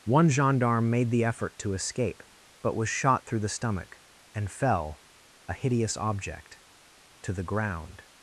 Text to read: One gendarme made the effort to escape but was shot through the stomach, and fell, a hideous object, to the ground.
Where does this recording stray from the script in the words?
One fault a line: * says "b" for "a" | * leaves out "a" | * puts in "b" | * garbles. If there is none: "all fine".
all fine